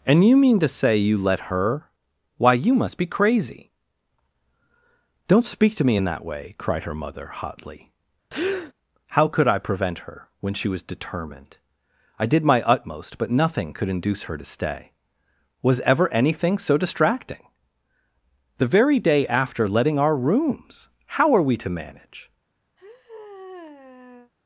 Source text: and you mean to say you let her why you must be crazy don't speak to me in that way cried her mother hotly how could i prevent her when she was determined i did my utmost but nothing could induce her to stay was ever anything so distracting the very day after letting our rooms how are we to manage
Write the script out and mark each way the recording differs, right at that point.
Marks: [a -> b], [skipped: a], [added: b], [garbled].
and you mean to say you let her why you must be crazy don't speak to me in that way cried her mother hotly how could i prevent her when she was determined i did my utmost but nothing could induce her to stay was ever anything so distracting the very day after letting our rooms how are we to manage